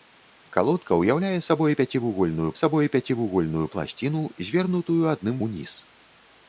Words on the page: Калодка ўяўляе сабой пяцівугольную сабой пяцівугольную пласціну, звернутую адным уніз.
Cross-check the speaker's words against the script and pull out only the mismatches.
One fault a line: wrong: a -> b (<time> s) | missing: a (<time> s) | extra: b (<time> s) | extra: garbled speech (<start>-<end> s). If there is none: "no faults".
no faults